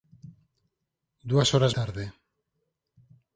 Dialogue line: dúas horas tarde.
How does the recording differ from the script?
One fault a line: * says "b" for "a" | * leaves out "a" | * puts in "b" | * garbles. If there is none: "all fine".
all fine